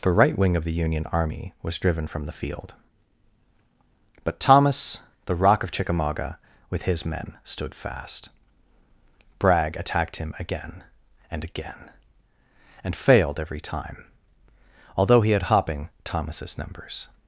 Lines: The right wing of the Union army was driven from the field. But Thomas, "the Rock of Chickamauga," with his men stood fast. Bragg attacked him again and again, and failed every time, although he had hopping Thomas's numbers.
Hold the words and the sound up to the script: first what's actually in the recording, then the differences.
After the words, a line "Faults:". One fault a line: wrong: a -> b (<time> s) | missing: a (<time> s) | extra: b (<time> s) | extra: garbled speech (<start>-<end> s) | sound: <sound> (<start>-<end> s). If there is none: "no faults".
The right wing of the Union army was driven from the field. But Thomas, "the Rock of Chickamauga," with his men stood fast. Bragg attacked him again and again, and failed every time, although he had hopping Thomas's numbers.
Faults:
no faults